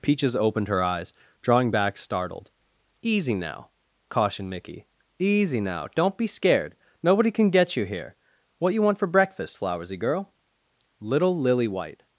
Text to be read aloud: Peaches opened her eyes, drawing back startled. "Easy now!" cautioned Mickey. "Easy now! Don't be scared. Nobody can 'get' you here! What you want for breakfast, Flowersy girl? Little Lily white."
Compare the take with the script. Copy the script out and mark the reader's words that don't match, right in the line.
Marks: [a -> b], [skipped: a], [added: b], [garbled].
Peaches opened her eyes, drawing back startled. "Easy now!" cautioned Mickey. "Easy now! Don't be scared. Nobody can 'get' you here! What you want for breakfast, Flowersy girl? Little Lily white."